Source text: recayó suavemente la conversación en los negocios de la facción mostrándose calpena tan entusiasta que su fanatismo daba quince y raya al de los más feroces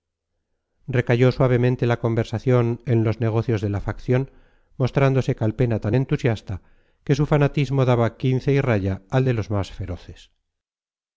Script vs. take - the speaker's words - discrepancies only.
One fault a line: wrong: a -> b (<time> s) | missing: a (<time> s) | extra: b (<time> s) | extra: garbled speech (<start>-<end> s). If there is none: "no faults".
no faults